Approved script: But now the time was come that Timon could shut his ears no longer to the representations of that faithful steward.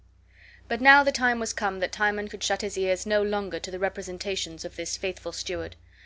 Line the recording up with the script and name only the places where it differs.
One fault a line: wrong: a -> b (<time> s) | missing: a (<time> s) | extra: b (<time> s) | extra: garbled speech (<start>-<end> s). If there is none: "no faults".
wrong: that -> this (4.8 s)